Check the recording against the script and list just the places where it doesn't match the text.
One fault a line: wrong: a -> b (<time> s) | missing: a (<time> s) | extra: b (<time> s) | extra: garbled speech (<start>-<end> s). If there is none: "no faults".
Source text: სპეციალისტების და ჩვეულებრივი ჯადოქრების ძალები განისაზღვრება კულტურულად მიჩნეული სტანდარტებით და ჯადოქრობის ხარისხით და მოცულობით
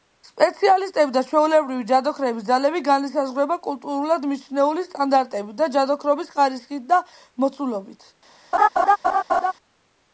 no faults